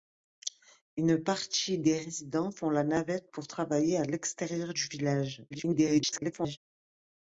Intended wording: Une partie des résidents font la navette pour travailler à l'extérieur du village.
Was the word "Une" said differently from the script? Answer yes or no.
no